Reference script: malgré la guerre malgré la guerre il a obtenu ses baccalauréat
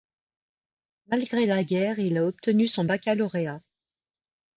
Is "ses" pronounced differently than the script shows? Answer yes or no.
yes